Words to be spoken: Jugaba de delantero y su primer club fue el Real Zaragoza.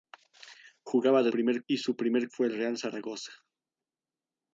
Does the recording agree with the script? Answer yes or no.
no